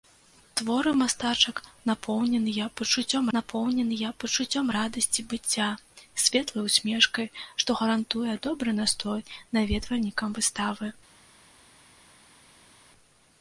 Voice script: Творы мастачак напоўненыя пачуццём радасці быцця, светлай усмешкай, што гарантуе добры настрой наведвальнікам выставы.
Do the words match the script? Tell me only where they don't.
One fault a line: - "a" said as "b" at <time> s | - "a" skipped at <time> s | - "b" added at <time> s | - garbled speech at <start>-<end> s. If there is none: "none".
- "напоўненыя пачуццём" added at 3.4 s